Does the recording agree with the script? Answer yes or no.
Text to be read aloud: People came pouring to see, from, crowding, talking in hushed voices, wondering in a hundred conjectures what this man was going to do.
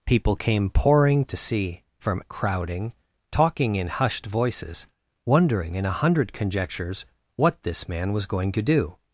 yes